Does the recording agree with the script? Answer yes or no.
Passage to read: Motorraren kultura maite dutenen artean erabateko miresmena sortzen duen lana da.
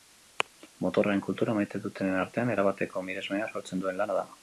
yes